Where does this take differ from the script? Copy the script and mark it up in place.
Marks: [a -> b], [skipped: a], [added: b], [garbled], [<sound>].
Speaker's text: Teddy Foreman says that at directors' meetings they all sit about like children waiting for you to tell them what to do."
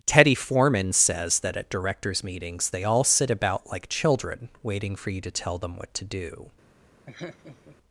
Teddy Foreman says that at directors' meetings they all sit about like children waiting for you to tell them what to do." [laugh]